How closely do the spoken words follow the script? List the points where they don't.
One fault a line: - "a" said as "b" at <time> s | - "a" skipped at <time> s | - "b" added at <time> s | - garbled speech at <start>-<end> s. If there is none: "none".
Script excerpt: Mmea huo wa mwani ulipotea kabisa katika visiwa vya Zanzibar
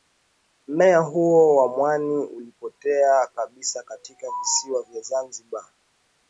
none